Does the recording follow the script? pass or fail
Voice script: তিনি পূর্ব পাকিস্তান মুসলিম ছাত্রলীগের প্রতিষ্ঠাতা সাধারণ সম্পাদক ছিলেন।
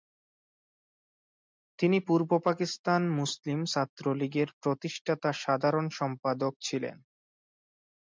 pass